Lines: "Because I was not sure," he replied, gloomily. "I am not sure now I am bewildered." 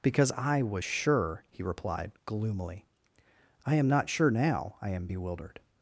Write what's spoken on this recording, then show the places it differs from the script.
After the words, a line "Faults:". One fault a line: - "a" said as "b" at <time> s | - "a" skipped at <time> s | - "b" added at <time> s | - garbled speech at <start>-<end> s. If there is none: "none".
"Because I was sure," he replied, gloomily. "I am not sure now I am bewildered."
Faults:
- "not" skipped at 0.8 s